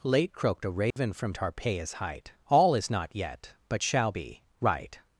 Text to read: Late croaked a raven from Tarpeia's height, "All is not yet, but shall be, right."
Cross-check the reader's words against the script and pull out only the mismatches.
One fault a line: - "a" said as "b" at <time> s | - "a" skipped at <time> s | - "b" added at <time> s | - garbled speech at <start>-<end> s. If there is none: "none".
none